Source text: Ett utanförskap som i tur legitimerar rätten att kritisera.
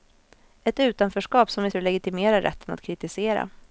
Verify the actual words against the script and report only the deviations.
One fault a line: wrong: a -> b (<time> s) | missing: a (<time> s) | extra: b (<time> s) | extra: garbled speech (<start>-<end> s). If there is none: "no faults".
no faults